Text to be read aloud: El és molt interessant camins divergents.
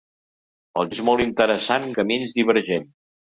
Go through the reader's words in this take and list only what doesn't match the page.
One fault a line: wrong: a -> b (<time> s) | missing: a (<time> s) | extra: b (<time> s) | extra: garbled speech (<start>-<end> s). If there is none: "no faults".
no faults